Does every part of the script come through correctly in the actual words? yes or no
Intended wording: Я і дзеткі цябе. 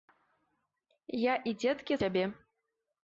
yes